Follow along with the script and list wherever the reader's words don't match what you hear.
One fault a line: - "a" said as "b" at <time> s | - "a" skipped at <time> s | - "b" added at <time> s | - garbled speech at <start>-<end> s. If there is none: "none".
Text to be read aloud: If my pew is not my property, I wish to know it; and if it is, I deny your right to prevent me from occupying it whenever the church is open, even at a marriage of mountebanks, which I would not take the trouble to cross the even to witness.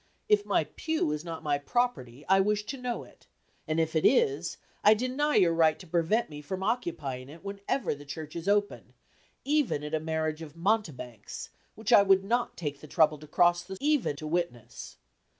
none